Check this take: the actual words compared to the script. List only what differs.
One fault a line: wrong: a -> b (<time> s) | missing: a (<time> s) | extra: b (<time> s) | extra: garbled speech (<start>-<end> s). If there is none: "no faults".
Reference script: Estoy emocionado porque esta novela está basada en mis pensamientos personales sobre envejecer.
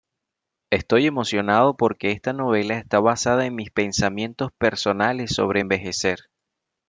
no faults